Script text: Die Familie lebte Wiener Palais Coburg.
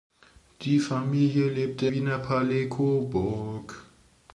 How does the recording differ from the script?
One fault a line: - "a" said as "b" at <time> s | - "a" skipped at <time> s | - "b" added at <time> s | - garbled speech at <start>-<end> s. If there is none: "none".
none